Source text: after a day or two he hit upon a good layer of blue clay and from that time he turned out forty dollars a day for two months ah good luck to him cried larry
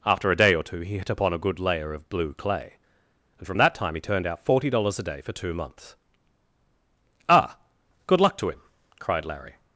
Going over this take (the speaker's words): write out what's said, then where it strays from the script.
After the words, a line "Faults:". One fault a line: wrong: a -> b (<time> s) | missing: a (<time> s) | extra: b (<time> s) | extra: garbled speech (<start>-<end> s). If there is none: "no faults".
after a day or two he hit upon a good layer of blue clay and from that time he turned out forty dollars a day for two months ah good luck to him cried larry
Faults:
no faults